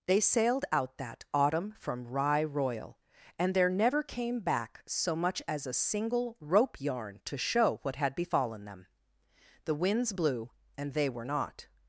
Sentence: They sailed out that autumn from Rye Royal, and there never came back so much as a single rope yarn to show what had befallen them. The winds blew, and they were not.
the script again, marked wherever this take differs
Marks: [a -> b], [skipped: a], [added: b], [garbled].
They sailed out that autumn from Rye Royal, and there never came back so much as a single rope yarn to show what had befallen them. The winds blew, and they were not.